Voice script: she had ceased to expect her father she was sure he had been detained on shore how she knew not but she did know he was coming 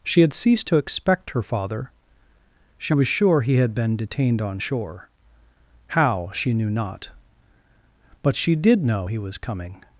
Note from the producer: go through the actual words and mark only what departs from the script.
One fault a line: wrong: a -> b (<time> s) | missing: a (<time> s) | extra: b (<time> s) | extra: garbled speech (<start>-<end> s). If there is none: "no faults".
no faults